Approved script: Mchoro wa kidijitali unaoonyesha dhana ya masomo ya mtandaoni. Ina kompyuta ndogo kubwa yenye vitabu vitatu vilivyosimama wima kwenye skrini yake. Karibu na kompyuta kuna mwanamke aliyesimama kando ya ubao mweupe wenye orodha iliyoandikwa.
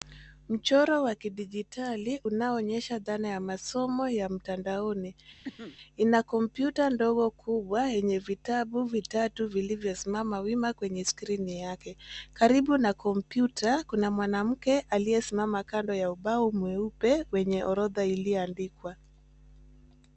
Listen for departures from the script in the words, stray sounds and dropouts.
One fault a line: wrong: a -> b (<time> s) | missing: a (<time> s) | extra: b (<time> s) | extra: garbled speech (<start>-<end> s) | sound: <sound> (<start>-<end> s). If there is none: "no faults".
sound: cough (5.4-5.8 s)